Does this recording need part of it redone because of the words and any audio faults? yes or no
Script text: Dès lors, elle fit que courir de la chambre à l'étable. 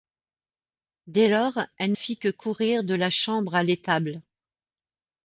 no